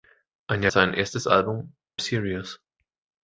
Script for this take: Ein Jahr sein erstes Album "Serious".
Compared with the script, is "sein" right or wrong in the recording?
right